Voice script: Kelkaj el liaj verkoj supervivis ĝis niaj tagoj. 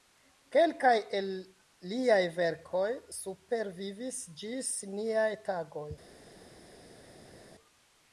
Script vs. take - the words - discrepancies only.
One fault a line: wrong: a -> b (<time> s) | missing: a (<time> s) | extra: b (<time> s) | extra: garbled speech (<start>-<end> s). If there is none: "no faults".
no faults